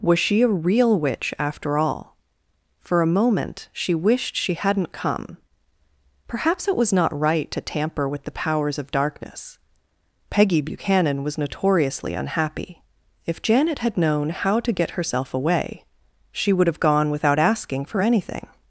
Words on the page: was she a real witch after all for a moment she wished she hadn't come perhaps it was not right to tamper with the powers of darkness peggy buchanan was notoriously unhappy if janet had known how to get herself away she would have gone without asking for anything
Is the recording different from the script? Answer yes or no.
no